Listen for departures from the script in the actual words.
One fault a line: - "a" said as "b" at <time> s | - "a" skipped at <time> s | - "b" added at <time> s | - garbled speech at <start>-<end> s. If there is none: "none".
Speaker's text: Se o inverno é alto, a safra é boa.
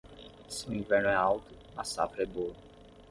none